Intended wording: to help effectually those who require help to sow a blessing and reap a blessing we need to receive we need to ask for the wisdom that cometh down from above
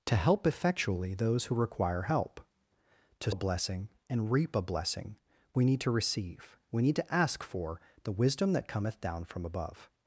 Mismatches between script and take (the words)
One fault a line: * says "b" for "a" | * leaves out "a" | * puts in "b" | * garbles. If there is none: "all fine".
* leaves out "sow"